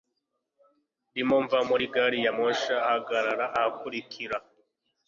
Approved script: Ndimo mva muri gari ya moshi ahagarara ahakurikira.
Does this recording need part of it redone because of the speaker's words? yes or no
no